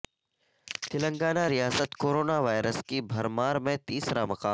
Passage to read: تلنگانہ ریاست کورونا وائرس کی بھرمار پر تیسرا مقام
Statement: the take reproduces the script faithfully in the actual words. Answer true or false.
false